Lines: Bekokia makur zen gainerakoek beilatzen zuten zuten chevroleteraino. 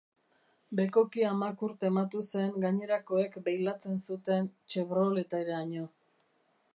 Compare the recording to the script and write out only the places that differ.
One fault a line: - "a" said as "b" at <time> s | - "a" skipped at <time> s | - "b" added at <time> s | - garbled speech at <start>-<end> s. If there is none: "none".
- "tematu" added at 1.8 s
- "zuten" skipped at 4.5 s